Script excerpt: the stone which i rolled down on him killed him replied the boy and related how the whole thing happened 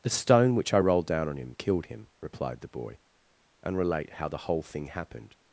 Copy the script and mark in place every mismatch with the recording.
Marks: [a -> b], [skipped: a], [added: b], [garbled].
the stone which i rolled down on him killed him replied the boy and [related -> relate] how the whole thing happened